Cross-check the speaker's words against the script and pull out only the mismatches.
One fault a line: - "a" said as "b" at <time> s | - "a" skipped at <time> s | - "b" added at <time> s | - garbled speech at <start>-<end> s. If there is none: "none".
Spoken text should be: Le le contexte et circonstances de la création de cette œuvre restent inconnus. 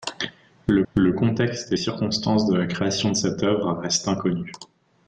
none